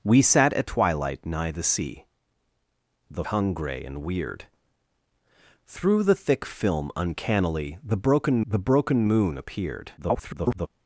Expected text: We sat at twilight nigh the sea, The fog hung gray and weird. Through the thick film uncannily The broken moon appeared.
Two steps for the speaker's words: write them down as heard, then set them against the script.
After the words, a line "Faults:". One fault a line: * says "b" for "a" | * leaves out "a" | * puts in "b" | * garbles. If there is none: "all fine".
We sat at twilight nigh the sea, The hung gray and weird. Through the thick film uncannily The broken The broken moon appeared. [garbled]
Faults:
* leaves out "fog"
* puts in "The broken"
* garbles